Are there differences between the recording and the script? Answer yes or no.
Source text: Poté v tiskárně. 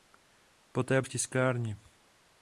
no